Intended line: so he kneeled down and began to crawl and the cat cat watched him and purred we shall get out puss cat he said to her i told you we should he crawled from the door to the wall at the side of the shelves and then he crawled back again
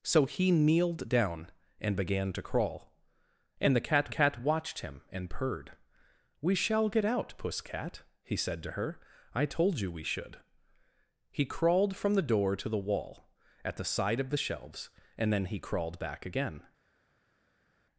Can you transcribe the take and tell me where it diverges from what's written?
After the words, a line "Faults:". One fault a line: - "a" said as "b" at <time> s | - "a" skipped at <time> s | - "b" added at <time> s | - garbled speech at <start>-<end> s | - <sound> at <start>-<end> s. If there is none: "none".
so he kneeled down and began to crawl and the cat cat watched him and purred we shall get out puss cat he said to her i told you we should he crawled from the door to the wall at the side of the shelves and then he crawled back again
Faults:
none